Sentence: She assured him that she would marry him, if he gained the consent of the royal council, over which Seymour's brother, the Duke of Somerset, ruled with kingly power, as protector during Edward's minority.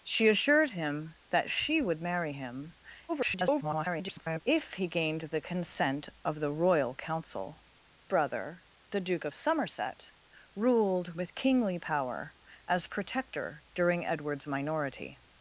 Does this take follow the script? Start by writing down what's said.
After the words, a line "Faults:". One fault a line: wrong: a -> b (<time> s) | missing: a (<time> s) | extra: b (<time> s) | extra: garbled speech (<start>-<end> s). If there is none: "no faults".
She assured him that she would marry him, [garbled] if he gained the consent of the royal council, brother, the Duke of Somerset, ruled with kingly power, as protector during Edward's minority.
Faults:
extra: garbled speech (3.1-4.4 s)
missing: over which Seymour's (7.6 s)